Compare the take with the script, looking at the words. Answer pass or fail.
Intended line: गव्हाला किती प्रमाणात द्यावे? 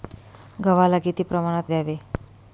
pass